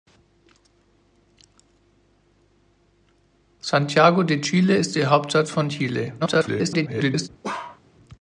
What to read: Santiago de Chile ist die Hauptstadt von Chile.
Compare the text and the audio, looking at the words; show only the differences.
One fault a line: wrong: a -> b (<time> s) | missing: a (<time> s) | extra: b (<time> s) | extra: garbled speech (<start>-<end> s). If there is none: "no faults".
extra: garbled speech (6.2-7.3 s)